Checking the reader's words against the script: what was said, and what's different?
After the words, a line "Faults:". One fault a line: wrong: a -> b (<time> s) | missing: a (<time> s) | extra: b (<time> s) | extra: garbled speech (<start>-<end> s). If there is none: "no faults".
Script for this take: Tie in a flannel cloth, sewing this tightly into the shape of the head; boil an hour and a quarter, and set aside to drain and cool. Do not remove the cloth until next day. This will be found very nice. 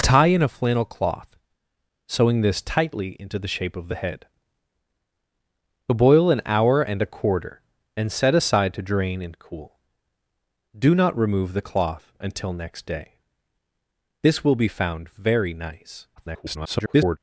Tie in a flannel cloth, sewing this tightly into the shape of the head; boil an hour and a quarter, and set aside to drain and cool. Do not remove the cloth until next day. This will be found very nice. [garbled]
Faults:
extra: garbled speech (16.2-17.2 s)